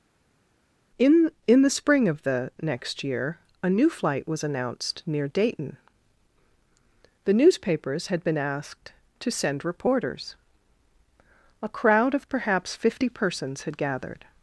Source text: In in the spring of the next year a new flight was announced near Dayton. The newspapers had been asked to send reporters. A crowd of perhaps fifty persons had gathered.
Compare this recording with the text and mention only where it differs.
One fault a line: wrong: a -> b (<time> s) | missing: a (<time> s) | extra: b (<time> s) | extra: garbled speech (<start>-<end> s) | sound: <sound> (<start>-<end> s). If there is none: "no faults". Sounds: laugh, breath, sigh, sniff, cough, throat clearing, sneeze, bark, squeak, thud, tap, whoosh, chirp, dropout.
no faults